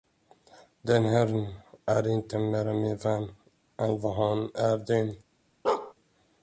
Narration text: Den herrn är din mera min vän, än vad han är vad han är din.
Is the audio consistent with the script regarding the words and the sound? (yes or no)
no